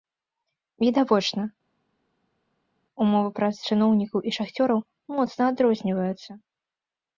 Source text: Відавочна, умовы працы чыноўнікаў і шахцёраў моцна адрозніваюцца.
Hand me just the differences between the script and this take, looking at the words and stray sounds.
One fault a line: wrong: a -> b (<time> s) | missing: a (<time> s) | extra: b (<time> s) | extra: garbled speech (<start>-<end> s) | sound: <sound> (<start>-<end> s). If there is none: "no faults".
no faults